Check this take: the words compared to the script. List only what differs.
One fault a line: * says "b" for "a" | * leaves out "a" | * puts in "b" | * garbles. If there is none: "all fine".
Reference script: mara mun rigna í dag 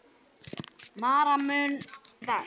* leaves out "rigna"